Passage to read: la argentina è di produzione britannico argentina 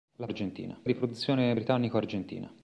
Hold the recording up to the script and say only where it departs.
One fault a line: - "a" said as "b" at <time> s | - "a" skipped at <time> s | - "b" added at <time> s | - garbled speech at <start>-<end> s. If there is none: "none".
none